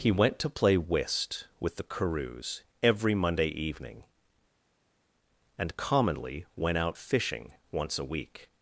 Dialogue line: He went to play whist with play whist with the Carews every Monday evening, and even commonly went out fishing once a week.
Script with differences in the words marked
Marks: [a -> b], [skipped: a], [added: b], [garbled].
He went to play whist with [skipped: play whist with] the Carews every Monday evening, and [skipped: even] commonly went out fishing once a week.